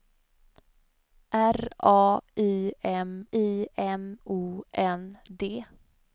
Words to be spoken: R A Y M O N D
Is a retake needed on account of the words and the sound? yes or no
yes